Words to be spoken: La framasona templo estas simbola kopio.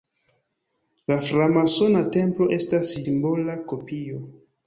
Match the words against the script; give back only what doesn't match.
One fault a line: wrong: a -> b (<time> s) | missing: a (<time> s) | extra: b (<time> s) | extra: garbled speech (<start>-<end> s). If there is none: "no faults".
no faults